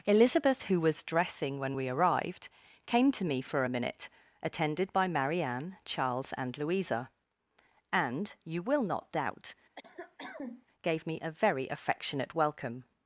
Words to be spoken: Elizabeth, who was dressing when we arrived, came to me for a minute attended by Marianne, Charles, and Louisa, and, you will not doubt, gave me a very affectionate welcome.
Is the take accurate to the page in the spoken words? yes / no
yes